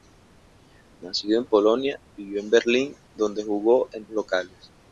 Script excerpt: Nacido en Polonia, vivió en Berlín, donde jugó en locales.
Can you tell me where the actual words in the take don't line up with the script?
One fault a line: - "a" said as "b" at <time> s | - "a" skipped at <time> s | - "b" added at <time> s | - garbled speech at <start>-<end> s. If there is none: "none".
none